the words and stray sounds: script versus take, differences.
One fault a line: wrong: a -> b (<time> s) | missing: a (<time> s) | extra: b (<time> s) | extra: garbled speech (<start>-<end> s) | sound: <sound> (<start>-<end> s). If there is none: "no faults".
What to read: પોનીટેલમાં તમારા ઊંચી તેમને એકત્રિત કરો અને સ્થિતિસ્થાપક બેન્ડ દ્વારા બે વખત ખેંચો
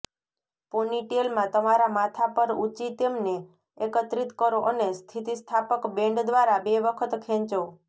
extra: માથા પર (2.0 s)